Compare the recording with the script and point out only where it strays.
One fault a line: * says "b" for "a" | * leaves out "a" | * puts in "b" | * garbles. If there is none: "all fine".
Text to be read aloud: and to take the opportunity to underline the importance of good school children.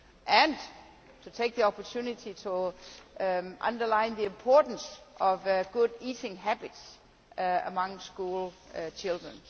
* puts in "eating habits among"